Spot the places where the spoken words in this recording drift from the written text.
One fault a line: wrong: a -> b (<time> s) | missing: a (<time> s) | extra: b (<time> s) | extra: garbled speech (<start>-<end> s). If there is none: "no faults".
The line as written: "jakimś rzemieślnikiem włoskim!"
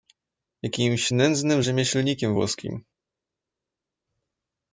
extra: nędznym (1.1 s)